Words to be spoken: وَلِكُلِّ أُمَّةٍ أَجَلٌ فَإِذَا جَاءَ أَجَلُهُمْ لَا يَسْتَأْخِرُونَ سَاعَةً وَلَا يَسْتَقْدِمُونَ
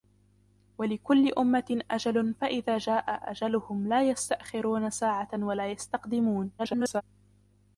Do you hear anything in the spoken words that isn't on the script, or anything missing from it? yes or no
yes